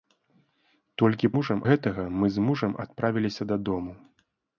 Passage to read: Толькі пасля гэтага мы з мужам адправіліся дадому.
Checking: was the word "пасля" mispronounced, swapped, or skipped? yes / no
yes